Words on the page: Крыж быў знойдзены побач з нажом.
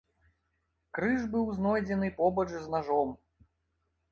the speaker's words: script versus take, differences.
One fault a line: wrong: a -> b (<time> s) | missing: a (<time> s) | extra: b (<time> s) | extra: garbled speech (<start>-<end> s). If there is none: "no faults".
no faults